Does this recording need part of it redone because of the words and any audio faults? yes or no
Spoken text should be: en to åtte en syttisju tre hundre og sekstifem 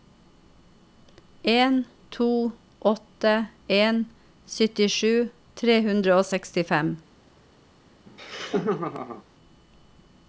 yes